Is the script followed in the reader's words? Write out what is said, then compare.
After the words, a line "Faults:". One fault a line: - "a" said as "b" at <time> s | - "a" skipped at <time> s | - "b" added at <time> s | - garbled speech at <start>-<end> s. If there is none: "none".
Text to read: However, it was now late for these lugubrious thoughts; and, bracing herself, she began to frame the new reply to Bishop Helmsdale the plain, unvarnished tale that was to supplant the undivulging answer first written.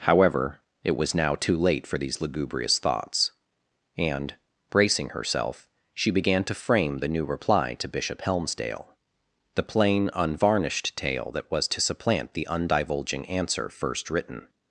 However, it was now too late for these lugubrious thoughts; and, bracing herself, she began to frame the new reply to Bishop Helmsdale the plain, unvarnished tale that was to supplant the undivulging answer first written.
Faults:
- "too" added at 1.4 s